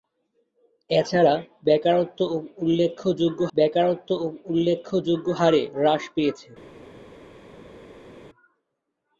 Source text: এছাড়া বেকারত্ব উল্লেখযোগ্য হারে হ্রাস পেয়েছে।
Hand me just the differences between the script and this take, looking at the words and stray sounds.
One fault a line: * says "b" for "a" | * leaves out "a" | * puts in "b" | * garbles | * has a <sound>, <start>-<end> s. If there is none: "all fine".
* puts in "বেকারত্ব উল্লেখযোগ্য"